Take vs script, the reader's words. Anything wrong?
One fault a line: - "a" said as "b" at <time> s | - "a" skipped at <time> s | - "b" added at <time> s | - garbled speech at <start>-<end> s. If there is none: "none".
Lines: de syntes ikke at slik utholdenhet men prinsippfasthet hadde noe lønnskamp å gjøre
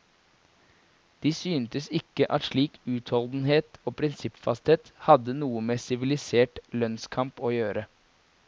- "men" said as "og" at 3.8 s
- "med sivilisert" added at 5.7 s